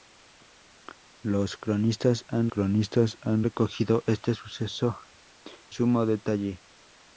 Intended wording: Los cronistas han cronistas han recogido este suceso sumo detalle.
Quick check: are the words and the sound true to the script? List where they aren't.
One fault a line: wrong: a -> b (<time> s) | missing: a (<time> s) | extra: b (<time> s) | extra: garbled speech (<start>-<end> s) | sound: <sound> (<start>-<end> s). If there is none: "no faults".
no faults